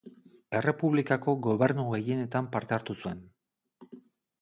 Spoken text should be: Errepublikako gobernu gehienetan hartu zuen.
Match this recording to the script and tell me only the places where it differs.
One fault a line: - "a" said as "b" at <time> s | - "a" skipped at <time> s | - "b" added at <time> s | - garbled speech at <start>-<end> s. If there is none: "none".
- "parte" added at 2.6 s